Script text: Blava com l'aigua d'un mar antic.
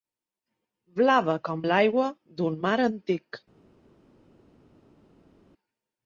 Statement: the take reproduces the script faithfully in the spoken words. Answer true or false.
true